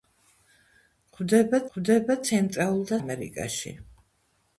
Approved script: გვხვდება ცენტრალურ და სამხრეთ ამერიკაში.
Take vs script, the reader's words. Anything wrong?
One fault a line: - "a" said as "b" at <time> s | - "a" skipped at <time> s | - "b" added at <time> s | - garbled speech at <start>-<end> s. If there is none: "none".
- "გვხვდება" added at 1.7 s
- "სამხრეთ" skipped at 3.0 s